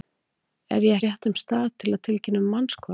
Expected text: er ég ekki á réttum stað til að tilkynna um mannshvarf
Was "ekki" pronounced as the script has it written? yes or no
no